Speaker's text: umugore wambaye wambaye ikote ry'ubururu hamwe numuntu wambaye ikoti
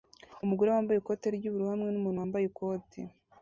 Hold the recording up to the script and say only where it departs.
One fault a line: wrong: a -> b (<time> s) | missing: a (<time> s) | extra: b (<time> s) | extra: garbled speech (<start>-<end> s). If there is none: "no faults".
missing: wambaye (1.0 s)